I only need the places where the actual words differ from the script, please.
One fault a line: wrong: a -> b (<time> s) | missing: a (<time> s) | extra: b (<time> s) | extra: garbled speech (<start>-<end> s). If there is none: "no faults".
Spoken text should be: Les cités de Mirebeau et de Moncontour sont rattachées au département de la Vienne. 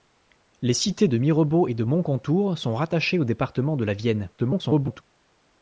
extra: garbled speech (4.4-5.0 s)